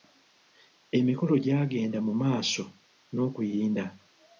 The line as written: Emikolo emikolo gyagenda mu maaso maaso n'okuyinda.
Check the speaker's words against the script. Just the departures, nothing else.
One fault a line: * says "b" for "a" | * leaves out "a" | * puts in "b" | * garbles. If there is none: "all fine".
* leaves out "emikolo"
* leaves out "maaso"